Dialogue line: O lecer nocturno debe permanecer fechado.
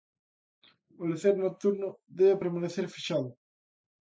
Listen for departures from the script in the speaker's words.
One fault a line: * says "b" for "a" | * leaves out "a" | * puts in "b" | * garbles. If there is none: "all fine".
all fine